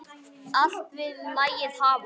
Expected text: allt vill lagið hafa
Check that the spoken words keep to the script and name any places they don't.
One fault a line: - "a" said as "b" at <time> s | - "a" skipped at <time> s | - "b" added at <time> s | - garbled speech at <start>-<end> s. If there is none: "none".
none